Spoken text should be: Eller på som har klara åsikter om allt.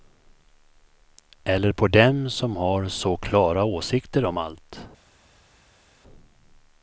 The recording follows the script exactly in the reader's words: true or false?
false